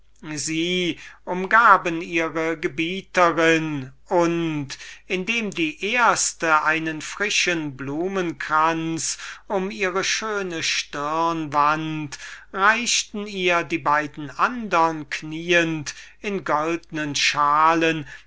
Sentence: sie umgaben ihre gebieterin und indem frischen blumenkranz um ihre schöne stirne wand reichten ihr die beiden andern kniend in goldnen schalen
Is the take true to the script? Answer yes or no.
no